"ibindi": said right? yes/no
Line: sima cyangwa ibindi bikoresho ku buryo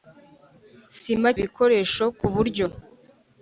no